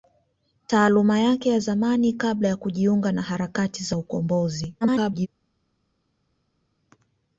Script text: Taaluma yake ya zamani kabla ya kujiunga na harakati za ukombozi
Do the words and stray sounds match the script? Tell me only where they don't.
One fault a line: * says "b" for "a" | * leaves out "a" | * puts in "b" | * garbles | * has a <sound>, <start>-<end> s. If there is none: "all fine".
* garbles